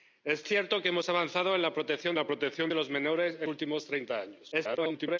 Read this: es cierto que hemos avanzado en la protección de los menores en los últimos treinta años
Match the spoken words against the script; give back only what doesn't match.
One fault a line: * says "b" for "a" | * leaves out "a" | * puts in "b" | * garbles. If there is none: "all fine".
* puts in "la protección"
* leaves out "los"
* garbles